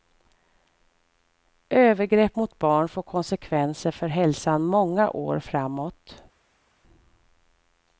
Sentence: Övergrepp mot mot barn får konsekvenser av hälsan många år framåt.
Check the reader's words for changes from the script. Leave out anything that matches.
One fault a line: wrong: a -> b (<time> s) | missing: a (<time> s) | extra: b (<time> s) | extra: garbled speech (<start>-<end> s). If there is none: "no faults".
missing: mot (2.6 s)
wrong: av -> för (3.9 s)